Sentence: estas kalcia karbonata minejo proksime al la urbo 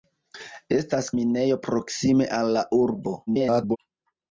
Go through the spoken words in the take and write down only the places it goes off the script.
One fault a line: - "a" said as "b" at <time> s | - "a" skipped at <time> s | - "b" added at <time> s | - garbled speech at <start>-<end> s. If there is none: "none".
- "kalcia karbonata" skipped at 1.1 s
- garbled speech at 3.3-3.8 s